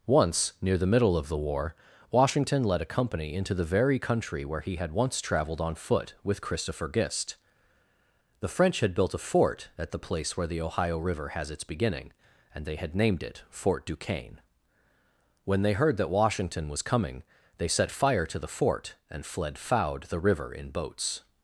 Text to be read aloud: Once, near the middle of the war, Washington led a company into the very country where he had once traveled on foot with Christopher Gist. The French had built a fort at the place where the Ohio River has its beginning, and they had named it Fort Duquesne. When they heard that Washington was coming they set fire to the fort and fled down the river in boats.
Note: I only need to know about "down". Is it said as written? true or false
false